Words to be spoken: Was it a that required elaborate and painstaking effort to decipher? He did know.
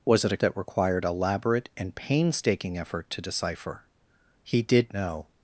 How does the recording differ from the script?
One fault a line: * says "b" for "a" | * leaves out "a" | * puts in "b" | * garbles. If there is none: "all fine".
all fine